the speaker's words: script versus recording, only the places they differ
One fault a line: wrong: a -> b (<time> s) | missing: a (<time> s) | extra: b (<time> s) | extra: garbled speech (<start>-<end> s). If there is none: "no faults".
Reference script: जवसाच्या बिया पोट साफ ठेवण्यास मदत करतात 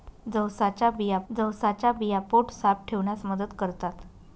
extra: जवसाच्या बिया (1.3 s)